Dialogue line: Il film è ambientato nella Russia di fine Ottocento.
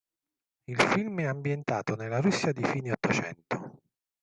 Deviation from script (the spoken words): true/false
false